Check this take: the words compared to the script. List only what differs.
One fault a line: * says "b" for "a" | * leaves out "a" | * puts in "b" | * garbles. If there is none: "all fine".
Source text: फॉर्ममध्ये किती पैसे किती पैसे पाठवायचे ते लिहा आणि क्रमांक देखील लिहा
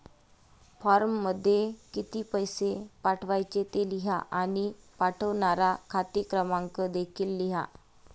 * leaves out "किती पैसे"
* puts in "पाठवणारा खाते"